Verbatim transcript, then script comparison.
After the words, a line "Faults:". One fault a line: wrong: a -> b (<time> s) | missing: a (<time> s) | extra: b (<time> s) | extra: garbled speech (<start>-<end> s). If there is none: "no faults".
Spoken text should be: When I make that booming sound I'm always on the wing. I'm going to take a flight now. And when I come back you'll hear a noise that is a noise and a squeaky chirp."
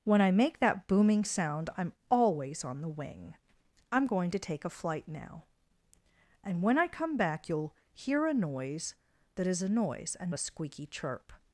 When I make that booming sound I'm always on the wing. I'm going to take a flight now. And when I come back you'll hear a noise that is a noise and a squeaky chirp."
Faults:
no faults